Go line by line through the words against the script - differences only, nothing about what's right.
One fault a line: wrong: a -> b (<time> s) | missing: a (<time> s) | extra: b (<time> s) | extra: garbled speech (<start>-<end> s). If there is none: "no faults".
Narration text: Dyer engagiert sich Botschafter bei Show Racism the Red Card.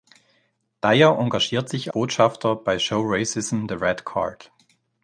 no faults